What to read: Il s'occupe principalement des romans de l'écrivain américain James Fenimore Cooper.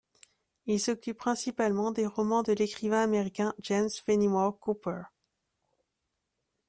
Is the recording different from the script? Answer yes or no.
no